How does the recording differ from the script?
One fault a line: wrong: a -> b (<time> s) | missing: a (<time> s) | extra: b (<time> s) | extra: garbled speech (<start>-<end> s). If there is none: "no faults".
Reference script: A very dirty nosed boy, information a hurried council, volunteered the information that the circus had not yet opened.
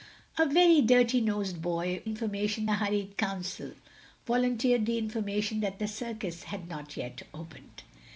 no faults